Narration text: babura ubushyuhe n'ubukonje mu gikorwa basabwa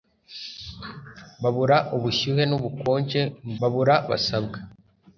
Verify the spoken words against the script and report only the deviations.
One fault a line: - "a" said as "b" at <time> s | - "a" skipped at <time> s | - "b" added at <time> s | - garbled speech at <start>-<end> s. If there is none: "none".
- "gikorwa" said as "babura" at 3.6 s